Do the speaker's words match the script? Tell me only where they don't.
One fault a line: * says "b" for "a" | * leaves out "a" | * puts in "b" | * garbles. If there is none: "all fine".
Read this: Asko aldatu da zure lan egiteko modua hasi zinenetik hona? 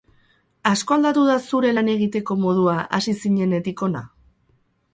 all fine